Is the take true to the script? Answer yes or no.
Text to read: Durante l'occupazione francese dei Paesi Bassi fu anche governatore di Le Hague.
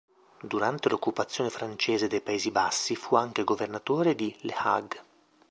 yes